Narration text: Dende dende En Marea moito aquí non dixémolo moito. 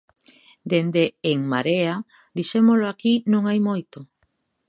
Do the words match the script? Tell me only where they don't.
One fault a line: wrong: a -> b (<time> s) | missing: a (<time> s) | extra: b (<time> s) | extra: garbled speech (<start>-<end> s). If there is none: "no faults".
missing: dende (1.0 s)
wrong: moito -> dixémolo (2.4 s)
wrong: dixémolo -> hai (3.5 s)